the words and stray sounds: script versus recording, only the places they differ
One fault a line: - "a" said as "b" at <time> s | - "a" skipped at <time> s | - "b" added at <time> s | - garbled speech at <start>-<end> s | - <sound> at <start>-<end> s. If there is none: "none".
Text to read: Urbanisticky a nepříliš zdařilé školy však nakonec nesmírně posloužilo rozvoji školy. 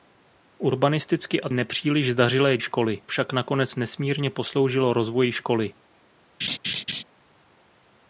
- laugh at 6.4-7.0 s